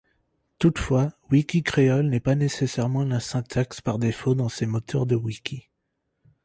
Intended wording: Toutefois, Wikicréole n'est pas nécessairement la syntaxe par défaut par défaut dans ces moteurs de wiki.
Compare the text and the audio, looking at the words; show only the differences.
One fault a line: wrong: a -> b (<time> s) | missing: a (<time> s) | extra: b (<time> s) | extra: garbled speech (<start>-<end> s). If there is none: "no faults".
missing: par défaut (4.3 s)